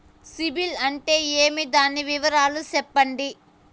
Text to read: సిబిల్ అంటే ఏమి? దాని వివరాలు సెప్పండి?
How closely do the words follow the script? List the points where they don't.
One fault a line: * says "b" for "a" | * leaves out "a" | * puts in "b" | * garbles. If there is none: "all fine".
all fine